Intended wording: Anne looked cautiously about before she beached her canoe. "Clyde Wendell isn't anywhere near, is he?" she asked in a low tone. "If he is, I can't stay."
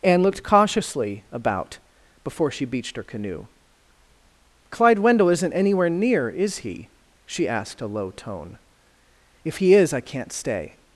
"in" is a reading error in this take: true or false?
true